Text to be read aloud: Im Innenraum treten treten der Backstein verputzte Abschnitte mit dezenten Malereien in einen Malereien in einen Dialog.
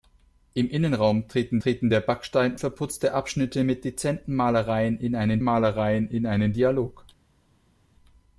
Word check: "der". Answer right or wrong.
right